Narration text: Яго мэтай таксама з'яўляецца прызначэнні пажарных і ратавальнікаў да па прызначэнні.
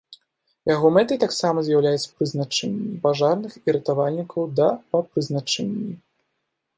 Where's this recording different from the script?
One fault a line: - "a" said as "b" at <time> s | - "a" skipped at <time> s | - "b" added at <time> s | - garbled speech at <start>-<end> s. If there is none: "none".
none